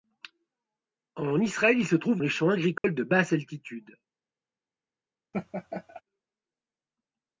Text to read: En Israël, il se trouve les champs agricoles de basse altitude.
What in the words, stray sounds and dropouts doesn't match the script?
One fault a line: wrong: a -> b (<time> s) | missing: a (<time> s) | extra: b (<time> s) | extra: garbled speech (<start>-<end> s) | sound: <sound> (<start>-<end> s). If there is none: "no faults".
sound: dropout (2.8-2.8 s)
sound: laugh (5.3-6.0 s)